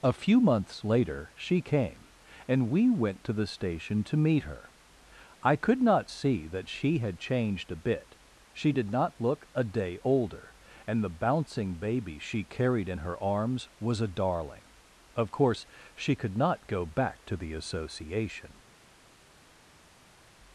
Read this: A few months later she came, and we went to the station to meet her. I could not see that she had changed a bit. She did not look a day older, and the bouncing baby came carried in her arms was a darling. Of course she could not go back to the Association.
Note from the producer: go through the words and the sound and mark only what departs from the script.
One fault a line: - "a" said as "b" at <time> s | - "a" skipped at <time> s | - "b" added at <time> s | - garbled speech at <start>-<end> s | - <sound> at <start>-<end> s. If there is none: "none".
- "came" said as "she" at 12.2 s